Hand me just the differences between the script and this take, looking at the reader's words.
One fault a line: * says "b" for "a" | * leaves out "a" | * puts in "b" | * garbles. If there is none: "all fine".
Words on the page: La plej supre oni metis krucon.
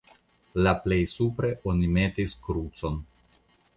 all fine